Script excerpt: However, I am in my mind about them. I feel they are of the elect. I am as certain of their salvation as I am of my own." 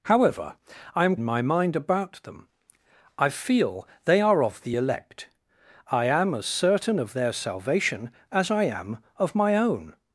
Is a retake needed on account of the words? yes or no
no